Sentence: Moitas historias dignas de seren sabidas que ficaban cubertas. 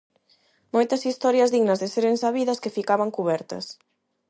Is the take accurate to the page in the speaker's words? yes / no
yes